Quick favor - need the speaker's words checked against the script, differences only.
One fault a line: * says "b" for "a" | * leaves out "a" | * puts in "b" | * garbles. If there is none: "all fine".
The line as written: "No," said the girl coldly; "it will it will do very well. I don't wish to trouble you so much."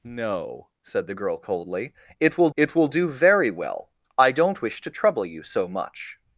all fine